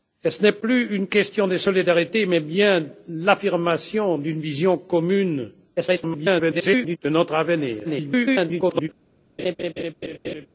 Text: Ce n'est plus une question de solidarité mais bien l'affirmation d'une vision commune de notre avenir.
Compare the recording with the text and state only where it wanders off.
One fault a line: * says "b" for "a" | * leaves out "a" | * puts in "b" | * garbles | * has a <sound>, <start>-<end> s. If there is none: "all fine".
* garbles
* garbles
* has a laugh, 9.4-10.5 s